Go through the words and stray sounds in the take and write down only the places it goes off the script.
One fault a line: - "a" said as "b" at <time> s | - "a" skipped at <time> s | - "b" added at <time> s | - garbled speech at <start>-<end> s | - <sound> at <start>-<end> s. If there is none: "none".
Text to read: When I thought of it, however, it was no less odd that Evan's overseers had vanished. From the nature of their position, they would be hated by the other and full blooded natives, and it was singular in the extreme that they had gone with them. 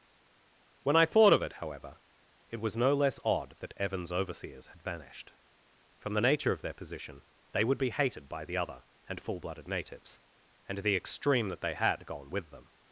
- "it was singular in" skipped at 10.8 s